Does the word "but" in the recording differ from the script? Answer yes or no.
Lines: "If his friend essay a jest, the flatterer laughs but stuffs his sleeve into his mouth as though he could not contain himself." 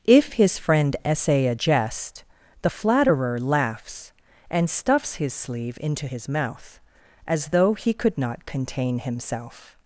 yes